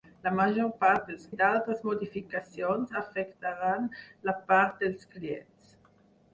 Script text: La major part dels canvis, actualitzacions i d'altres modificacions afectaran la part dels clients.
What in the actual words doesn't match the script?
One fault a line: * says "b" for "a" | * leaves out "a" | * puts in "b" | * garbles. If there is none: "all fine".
* leaves out "canvis actualitzacions"